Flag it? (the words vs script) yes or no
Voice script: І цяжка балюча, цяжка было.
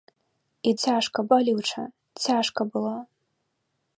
no